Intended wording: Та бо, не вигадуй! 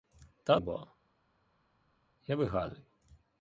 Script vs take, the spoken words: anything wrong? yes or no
no